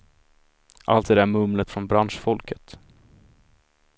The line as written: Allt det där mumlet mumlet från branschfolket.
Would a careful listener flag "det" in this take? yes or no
no